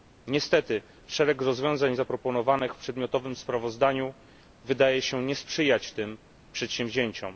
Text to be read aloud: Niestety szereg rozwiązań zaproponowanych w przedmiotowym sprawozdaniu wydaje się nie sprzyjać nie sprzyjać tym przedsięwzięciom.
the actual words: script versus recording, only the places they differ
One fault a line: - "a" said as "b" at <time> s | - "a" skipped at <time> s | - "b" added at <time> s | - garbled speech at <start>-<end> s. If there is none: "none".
- "nie sprzyjać" skipped at 5.9 s